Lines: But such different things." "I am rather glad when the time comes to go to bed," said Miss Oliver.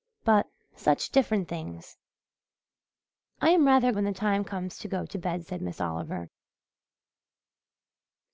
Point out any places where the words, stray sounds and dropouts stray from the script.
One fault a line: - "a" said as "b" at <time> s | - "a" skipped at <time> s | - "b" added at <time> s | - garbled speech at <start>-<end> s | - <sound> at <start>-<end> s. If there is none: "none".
- "glad" skipped at 3.9 s